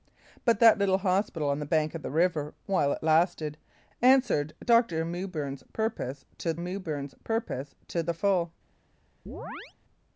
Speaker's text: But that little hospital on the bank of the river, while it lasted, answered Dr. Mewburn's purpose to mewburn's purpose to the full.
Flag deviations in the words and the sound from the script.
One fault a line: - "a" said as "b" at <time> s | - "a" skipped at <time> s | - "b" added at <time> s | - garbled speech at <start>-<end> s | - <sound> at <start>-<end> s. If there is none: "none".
- chirp at 9.3-9.7 s